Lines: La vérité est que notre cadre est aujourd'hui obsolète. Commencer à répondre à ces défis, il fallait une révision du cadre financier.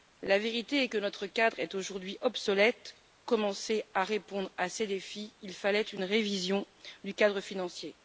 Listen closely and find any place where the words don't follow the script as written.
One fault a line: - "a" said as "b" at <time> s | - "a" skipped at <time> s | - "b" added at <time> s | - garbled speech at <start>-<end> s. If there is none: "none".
none